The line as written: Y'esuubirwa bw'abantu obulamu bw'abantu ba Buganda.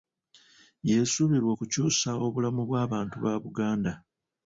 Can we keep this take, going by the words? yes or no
no